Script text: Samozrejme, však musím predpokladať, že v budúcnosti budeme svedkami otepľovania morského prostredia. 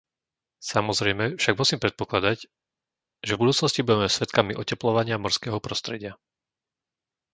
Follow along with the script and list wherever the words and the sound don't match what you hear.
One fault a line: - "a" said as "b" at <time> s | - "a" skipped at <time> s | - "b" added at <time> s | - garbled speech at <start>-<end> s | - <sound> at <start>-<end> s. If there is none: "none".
none